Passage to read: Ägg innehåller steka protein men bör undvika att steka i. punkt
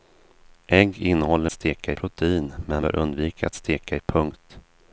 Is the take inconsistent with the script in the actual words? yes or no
no